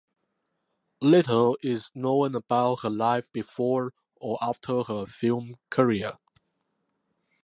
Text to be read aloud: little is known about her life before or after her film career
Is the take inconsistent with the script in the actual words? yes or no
no